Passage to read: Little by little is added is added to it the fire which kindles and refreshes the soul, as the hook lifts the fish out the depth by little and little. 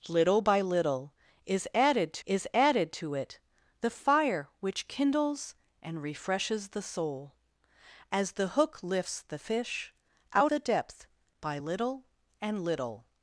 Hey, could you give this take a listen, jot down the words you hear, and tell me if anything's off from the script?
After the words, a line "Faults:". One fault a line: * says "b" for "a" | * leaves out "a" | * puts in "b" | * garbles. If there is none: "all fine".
Little by little is added is added to it the fire which kindles and refreshes the soul, as the hook lifts the fish out the depth by little and little.
Faults:
all fine